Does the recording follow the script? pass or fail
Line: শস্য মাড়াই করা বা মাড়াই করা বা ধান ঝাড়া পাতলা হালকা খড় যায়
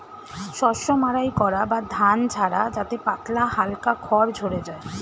fail